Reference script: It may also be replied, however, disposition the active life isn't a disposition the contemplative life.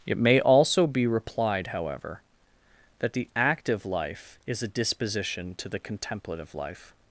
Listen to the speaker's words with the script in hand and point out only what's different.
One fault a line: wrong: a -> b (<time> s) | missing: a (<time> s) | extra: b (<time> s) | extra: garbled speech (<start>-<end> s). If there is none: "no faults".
wrong: disposition -> that (3.0 s)
wrong: isn't -> is (4.5 s)
extra: to (5.6 s)